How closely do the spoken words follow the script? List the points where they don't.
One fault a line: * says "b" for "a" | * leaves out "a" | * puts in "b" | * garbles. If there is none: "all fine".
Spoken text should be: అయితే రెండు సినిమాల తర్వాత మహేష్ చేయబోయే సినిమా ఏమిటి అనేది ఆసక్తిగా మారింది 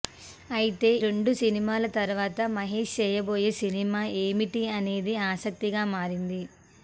all fine